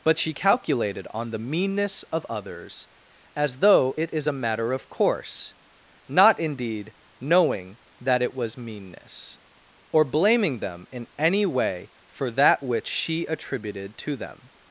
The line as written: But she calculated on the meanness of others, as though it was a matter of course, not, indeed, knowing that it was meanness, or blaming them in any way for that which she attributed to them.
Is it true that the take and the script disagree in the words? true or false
true